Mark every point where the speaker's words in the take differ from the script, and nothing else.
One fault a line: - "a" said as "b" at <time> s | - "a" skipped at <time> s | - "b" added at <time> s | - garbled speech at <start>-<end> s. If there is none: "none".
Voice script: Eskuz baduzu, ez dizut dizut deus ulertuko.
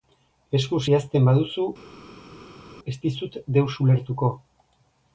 - "idazten" added at 0.9 s
- "dizut" skipped at 3.4 s